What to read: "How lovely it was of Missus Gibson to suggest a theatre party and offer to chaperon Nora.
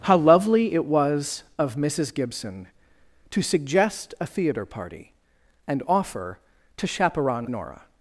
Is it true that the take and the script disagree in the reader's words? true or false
false